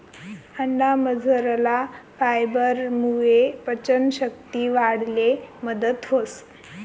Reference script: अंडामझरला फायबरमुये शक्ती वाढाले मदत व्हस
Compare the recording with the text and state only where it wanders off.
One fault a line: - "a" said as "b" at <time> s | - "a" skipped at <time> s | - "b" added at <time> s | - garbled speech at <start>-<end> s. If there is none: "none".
- "पचन" added at 3.7 s